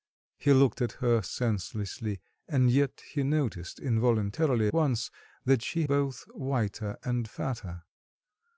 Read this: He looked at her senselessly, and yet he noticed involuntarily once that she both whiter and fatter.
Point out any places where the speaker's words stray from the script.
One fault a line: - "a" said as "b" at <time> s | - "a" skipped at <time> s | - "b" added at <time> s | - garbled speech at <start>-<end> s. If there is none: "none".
none